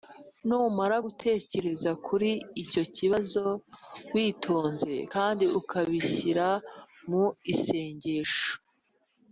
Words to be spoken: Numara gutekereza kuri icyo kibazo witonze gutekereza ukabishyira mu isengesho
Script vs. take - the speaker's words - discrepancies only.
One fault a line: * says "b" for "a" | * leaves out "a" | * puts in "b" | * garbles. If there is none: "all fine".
* says "kandi" for "gutekereza"